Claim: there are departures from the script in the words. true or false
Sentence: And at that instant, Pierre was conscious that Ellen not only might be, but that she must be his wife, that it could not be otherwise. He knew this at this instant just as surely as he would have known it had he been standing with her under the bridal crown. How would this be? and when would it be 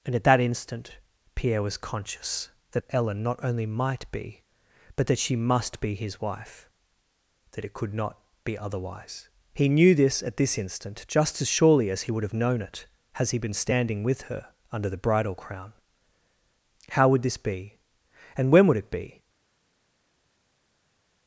true